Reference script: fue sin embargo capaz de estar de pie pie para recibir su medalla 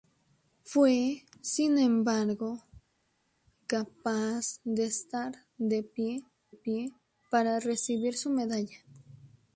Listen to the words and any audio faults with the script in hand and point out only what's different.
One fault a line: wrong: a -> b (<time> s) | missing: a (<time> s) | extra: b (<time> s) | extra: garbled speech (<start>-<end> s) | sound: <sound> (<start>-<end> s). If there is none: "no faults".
no faults